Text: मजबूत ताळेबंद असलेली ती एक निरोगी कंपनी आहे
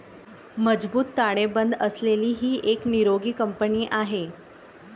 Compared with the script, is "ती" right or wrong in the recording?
wrong